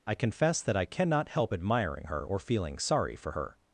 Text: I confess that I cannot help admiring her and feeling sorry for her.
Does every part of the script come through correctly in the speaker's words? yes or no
no